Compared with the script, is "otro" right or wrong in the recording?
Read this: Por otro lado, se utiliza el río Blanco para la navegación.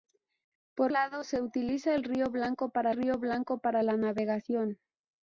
wrong